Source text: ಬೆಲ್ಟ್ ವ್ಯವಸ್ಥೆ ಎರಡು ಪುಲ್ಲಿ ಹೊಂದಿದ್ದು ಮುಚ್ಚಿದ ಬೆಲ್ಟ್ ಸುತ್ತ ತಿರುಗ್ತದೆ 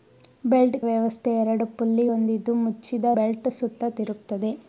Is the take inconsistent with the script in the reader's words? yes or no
no